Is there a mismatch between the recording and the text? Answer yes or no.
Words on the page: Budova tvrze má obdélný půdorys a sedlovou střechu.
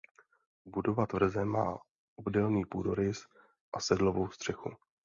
no